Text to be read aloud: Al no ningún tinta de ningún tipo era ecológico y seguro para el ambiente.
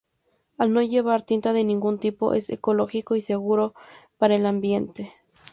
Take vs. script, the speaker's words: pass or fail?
fail